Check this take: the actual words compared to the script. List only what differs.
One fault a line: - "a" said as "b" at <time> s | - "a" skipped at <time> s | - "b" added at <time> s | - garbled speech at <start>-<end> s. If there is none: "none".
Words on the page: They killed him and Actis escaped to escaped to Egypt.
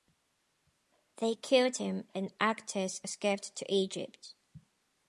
- "escaped to" skipped at 3.7 s